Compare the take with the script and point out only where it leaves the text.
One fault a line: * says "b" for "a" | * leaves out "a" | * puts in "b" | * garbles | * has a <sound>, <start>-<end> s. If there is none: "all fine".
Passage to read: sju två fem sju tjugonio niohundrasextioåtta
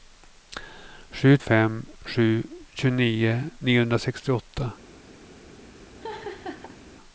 * leaves out "två"
* has a laugh, 6.0-6.8 s